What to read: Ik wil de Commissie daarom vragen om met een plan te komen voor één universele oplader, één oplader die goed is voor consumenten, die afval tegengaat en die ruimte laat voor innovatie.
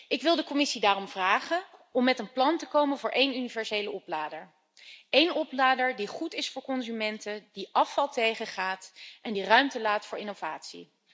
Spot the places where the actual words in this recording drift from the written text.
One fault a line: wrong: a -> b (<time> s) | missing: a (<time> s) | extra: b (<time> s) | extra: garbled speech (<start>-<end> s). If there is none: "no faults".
no faults